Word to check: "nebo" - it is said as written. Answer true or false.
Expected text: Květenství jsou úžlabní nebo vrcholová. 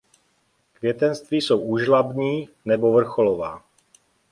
true